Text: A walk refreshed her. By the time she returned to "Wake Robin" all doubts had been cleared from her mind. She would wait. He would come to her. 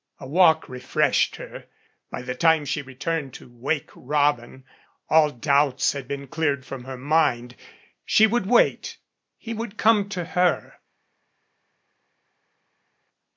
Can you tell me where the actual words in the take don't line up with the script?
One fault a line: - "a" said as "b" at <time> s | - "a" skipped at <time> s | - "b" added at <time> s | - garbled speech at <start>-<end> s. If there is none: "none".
none